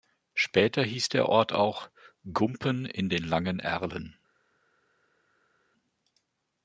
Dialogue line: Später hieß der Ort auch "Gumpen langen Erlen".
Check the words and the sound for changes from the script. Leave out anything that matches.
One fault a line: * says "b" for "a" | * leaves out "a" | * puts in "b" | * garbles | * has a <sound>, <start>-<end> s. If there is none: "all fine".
* puts in "in den"